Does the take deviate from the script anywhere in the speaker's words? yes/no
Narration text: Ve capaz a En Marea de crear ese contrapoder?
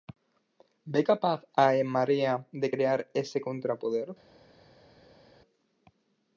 no